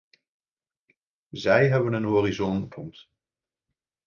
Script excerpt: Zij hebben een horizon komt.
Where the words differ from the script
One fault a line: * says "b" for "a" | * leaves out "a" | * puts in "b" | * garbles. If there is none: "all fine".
all fine